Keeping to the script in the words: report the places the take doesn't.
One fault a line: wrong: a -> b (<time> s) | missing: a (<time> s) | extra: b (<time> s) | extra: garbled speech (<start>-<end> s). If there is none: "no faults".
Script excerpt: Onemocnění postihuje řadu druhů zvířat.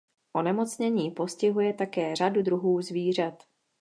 extra: také (1.7 s)